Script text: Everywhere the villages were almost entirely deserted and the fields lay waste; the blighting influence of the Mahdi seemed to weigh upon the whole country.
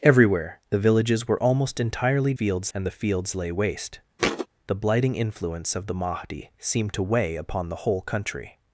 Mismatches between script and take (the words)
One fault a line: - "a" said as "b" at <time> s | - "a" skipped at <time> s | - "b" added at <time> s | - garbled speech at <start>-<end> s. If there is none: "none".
- "deserted" said as "fields" at 2.3 s